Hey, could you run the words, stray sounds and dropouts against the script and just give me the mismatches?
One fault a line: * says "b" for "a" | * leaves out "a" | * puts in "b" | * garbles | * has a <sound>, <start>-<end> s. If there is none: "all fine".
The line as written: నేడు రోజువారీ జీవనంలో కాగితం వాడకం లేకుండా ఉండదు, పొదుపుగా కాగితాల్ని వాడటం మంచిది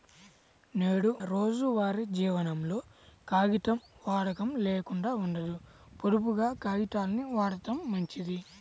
all fine